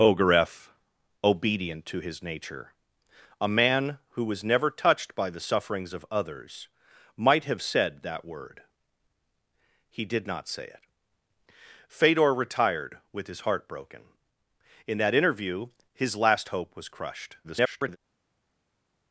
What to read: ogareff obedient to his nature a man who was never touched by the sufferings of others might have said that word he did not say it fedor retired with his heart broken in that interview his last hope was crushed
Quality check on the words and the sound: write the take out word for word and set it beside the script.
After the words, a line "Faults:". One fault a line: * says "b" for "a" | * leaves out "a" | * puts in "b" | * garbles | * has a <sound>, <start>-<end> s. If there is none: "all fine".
ogareff obedient to his nature a man who was never touched by the sufferings of others might have said that word he did not say it fedor retired with his heart broken in that interview his last hope was crushed [garbled]
Faults:
* garbles